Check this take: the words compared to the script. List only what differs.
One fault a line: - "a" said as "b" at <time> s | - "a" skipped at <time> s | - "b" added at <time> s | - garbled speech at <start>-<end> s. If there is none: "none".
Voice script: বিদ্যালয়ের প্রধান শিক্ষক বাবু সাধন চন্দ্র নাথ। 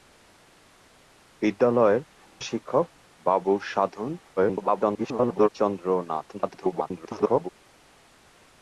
- "প্রধান" skipped at 2.0 s
- garbled speech at 4.4-5.5 s
- garbled speech at 6.3-7.5 s